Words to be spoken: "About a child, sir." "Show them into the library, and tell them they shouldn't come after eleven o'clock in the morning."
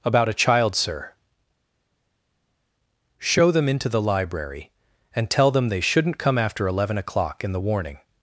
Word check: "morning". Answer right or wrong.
wrong